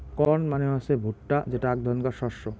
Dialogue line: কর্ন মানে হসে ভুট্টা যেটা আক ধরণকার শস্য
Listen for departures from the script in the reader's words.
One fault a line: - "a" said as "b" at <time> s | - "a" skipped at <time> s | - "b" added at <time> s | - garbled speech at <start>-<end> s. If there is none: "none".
none